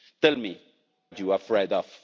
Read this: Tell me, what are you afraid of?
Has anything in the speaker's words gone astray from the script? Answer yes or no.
yes